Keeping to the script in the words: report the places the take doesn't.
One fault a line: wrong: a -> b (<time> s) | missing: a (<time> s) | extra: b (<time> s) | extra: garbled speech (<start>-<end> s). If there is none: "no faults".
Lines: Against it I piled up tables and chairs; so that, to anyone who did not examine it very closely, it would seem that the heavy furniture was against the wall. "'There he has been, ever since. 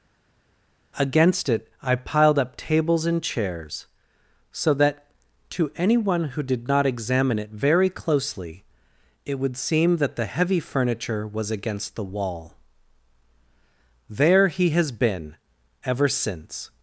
no faults